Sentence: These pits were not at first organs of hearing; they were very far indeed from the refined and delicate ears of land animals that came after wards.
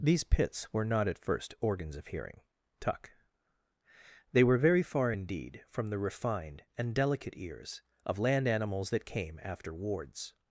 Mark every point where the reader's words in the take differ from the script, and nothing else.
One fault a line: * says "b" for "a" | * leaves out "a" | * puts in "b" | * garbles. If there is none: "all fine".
* puts in "tuck"